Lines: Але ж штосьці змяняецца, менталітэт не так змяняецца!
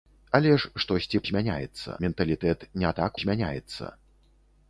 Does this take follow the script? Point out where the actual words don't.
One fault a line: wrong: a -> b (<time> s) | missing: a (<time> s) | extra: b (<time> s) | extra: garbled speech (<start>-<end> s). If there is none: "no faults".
no faults